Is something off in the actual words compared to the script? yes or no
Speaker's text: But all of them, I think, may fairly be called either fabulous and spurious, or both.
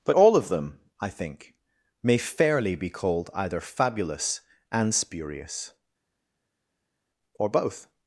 no